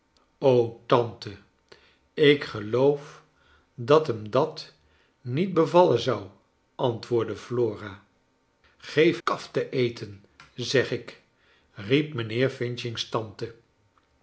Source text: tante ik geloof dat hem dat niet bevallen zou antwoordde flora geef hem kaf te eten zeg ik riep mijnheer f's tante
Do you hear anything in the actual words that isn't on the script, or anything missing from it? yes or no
yes